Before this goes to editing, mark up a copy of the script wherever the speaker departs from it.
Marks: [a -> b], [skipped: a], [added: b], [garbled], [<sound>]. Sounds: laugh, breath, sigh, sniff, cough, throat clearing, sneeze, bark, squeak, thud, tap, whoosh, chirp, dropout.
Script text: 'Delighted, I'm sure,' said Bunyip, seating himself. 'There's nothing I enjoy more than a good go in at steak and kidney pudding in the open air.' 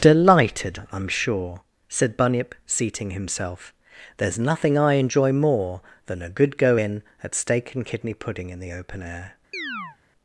'Delighted, I'm sure,' said Bunyip, seating himself. 'There's nothing I enjoy more than a good go in at steak and kidney pudding in the open air.' [chirp]